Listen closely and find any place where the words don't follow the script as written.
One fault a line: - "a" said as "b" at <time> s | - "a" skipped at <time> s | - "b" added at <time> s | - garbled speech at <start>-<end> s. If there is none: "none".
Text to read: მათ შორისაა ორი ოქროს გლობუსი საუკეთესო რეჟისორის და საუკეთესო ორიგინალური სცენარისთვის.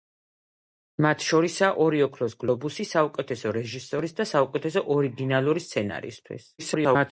- garbled speech at 6.6-7.1 s